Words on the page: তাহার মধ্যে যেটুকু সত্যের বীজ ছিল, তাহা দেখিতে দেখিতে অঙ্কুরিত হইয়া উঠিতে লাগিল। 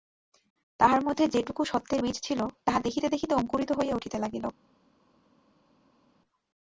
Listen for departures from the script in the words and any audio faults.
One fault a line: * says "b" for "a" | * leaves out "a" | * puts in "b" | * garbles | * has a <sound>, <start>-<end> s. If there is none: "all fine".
all fine